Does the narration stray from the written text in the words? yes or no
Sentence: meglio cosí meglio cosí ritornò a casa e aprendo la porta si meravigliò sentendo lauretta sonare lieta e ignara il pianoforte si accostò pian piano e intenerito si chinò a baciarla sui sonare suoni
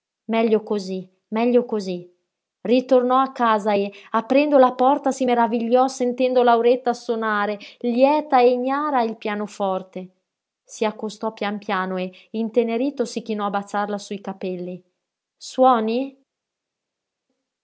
yes